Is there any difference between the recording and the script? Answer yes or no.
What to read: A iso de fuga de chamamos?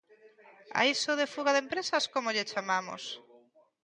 yes